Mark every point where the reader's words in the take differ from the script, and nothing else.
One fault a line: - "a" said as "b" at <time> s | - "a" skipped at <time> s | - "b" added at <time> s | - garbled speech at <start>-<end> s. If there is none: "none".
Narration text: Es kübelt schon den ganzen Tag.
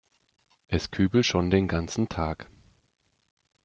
none